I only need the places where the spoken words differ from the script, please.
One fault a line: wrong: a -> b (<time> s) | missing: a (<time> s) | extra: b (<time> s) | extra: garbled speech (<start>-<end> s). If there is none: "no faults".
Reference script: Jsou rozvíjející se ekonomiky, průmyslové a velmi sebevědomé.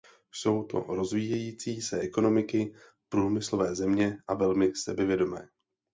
extra: to (0.6 s)
extra: země (3.7 s)